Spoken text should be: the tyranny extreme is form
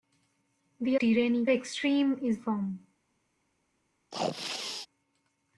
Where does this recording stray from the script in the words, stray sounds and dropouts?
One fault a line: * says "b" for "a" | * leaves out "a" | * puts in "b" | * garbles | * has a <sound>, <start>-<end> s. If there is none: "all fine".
* has a sneeze, 4.1-4.9 s